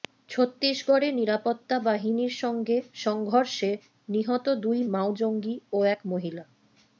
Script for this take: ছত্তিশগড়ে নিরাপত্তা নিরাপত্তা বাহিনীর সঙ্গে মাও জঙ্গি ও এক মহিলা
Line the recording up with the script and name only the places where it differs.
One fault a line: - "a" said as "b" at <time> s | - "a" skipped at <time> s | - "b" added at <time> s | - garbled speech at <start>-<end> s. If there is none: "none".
- "নিরাপত্তা" skipped at 1.8 s
- "সংঘর্ষে নিহত দুই" added at 3.0 s